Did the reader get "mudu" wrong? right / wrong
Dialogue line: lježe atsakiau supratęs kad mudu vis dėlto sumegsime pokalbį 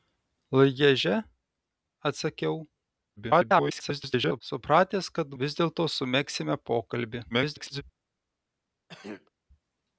wrong